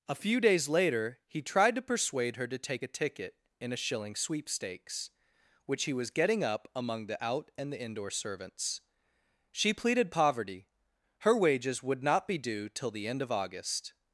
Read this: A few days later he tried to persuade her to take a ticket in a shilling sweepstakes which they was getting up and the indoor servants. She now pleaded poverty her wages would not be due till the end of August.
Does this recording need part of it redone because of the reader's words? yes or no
yes